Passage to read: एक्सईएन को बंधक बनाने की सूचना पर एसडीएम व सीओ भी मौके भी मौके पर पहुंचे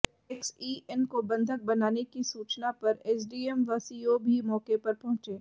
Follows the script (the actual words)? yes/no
no